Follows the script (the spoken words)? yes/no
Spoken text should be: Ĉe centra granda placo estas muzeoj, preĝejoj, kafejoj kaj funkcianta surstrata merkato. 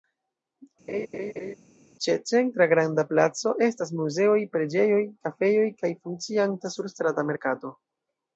yes